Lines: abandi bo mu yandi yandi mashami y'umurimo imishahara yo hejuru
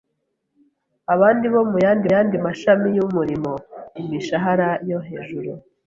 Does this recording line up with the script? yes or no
yes